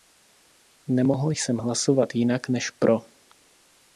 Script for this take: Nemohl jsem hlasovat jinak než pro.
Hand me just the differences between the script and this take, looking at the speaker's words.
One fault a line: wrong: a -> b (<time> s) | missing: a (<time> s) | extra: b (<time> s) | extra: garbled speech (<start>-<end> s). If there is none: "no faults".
no faults